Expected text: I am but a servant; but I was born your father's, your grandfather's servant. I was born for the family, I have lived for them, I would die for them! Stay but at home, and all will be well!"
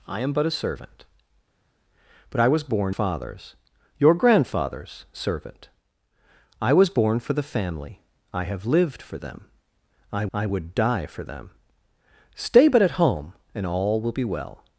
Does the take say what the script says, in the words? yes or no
no